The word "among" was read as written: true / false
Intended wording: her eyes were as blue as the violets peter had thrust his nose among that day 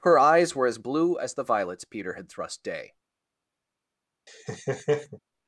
false